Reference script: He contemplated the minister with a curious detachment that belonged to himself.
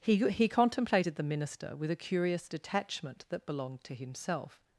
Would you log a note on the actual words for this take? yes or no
yes